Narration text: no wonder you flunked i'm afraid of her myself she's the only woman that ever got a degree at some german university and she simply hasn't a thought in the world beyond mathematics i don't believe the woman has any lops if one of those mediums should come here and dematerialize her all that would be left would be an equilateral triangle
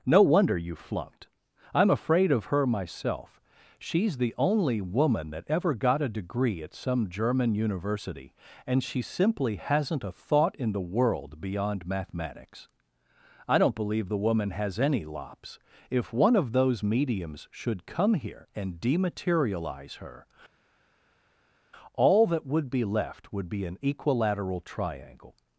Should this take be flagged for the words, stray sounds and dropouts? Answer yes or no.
no